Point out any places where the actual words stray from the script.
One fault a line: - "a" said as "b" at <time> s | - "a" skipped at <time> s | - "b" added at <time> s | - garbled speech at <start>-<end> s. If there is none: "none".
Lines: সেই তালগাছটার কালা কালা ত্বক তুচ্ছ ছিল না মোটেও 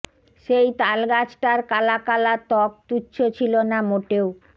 none